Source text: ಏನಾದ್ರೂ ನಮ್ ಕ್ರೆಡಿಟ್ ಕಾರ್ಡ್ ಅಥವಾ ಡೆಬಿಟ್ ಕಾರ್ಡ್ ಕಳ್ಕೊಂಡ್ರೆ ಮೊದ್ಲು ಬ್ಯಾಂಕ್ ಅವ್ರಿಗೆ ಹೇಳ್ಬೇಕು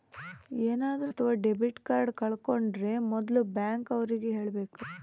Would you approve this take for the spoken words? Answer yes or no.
no